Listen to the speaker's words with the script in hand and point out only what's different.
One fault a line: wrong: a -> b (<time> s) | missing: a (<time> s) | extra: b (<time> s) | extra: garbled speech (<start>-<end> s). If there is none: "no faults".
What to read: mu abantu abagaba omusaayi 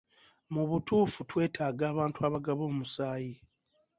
extra: butuufu twetaaga (0.7 s)